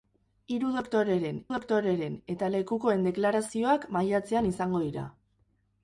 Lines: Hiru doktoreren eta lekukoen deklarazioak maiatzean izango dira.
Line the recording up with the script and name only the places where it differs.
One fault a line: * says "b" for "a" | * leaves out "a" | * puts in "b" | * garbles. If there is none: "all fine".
* puts in "doktoreren"